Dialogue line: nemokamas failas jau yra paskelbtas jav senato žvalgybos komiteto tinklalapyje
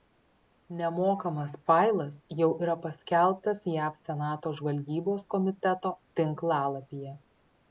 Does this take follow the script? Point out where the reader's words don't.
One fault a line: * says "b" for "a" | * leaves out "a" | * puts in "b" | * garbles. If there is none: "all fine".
all fine